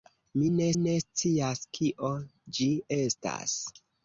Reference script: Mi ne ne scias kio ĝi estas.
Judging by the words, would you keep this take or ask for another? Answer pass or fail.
pass